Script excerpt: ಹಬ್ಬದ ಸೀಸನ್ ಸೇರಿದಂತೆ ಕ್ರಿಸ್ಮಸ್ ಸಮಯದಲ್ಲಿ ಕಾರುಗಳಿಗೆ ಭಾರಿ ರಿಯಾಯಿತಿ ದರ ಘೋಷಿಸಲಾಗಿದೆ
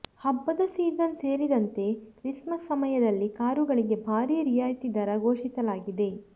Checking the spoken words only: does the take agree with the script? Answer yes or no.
yes